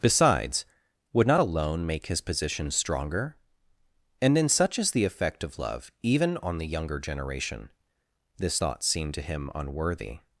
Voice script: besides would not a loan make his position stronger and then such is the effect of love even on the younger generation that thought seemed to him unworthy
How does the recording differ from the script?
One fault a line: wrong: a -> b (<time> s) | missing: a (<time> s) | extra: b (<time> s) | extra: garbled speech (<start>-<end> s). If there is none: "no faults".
wrong: that -> this (8.4 s)